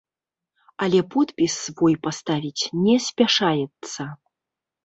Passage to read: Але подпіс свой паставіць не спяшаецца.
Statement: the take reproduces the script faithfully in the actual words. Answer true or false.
true